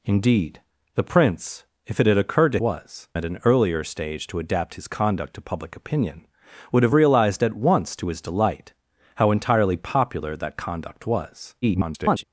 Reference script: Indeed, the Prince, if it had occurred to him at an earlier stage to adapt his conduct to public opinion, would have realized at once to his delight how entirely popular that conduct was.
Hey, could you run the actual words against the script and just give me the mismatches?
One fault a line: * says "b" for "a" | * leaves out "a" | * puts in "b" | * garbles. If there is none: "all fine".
* says "was" for "him"
* garbles